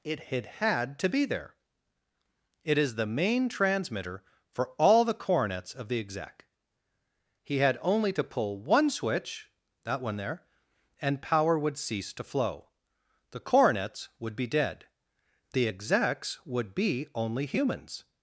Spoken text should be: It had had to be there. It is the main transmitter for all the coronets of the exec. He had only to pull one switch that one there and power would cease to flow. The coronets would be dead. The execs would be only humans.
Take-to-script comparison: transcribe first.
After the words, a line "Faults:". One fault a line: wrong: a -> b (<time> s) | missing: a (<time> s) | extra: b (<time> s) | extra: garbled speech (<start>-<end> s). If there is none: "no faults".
It had had to be there. It is the main transmitter for all the coronets of the exec. He had only to pull one switch that one there and power would cease to flow. The coronets would be dead. The execs would be only humans.
Faults:
no faults